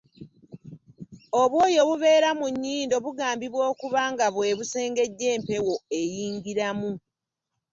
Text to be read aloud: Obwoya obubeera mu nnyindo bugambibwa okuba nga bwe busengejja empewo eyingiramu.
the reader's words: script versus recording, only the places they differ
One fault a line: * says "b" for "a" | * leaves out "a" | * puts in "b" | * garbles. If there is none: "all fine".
all fine